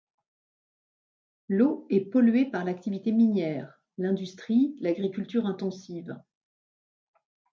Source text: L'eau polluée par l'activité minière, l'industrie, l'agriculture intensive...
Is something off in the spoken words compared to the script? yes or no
yes